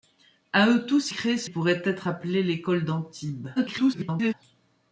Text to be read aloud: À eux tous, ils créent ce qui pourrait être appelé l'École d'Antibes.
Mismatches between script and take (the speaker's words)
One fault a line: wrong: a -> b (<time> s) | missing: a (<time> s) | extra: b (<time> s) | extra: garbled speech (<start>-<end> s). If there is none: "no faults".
missing: ils (1.1 s)
missing: qui (1.5 s)
extra: garbled speech (3.6-4.3 s)